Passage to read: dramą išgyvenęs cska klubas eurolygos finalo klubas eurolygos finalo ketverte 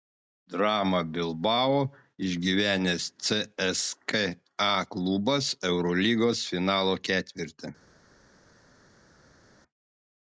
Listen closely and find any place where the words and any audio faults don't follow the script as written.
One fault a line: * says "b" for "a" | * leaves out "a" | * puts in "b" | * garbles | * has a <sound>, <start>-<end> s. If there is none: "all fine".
* puts in "bilbao"
* leaves out "klubas eurolygos finalo"